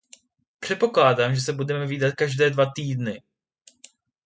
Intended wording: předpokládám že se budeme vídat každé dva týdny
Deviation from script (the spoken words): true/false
false